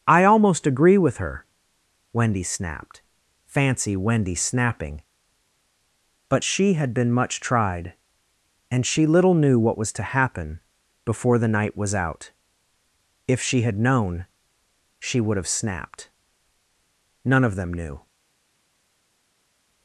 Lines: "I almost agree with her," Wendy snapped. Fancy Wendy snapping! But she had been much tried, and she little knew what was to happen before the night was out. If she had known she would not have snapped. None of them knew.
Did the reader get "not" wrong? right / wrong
wrong